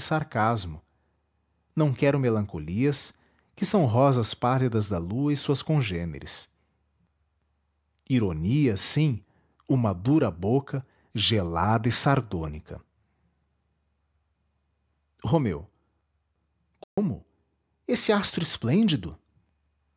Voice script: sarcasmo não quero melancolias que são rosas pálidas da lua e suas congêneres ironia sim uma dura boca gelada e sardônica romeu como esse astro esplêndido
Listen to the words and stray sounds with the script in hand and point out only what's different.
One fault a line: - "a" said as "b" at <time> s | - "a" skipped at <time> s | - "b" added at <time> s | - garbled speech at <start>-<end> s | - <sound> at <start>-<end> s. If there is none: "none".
- dropout at 16.8-17.0 s